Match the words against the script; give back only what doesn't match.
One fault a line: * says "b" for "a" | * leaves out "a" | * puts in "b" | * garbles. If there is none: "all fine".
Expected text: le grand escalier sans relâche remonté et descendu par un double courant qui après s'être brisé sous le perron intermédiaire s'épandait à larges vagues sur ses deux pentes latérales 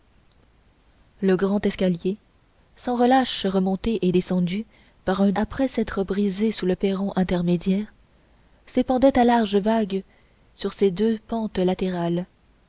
* leaves out "double courant qui"